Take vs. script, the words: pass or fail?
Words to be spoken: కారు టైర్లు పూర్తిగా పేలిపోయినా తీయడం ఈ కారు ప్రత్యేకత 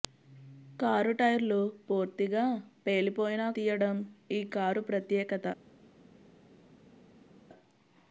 pass